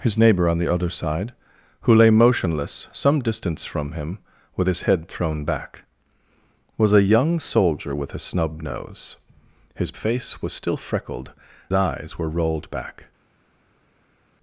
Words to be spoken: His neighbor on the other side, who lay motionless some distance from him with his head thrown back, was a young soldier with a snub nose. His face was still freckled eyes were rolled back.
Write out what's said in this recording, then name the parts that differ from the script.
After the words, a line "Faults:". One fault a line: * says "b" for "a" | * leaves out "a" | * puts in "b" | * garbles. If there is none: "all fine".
His neighbor on the other side, who lay motionless some distance from him with his head thrown back, was a young soldier with a snub nose. His face was still freckled eyes were rolled back.
Faults:
all fine